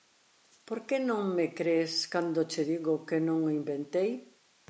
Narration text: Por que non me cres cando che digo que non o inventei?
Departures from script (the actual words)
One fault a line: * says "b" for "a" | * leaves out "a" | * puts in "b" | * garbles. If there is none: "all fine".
all fine